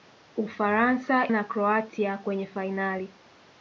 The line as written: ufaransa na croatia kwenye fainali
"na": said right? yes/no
yes